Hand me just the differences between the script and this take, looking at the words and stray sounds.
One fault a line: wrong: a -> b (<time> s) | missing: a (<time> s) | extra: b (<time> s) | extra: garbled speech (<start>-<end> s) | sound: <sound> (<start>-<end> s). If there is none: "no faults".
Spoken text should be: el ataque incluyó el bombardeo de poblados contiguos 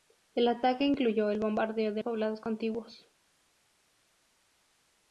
no faults